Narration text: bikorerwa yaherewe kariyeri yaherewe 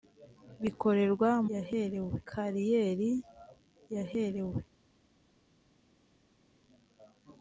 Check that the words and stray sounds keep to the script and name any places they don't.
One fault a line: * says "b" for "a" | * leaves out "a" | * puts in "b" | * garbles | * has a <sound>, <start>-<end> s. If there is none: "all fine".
all fine